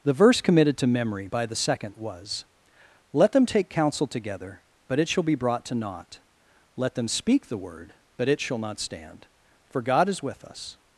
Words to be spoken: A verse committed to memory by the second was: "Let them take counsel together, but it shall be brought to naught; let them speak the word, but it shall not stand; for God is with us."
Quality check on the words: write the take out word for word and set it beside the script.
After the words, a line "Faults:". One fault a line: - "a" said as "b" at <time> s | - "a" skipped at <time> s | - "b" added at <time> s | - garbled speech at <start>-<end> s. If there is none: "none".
The verse committed to memory by the second was: "Let them take counsel together, but it shall be brought to naught; let them speak the word, but it shall not stand; for God is with us."
Faults:
- "A" said as "The" at 0.0 s